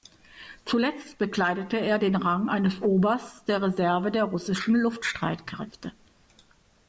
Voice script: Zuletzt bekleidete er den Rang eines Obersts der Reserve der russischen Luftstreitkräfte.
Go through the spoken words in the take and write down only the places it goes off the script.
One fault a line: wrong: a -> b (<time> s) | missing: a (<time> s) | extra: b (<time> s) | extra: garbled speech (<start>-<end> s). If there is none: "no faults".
no faults